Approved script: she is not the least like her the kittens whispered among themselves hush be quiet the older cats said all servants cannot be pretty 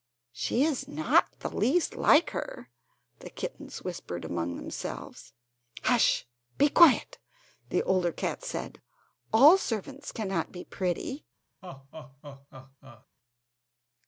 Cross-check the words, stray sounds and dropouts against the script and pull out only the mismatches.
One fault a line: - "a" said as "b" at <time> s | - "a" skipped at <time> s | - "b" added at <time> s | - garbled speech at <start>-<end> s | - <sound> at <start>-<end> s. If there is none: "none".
- laugh at 11.6-13.1 s